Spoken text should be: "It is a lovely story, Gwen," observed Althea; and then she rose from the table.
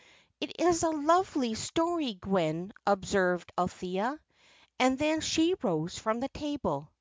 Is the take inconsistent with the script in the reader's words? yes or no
no